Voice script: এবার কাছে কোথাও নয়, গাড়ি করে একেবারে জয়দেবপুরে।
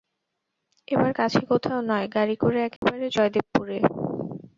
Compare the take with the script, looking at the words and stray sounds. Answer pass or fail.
fail